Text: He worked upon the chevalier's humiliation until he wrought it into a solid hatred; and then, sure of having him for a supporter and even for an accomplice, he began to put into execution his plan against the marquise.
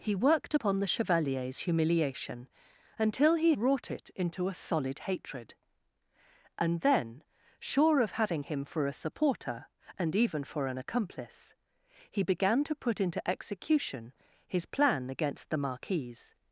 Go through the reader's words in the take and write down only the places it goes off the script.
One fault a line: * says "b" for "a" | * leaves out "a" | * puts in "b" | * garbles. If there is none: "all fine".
all fine